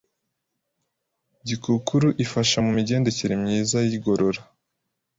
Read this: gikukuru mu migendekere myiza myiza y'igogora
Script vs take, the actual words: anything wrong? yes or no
yes